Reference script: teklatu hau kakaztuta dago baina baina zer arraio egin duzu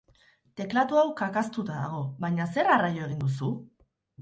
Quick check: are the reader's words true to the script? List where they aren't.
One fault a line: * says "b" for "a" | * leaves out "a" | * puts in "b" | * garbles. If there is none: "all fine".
* leaves out "baina"